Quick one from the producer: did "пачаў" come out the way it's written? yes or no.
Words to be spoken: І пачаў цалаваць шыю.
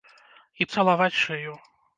no